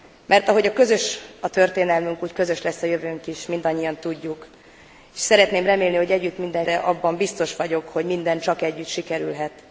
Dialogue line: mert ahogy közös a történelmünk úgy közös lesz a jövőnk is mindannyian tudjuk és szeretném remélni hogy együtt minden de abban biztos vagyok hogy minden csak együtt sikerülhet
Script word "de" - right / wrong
right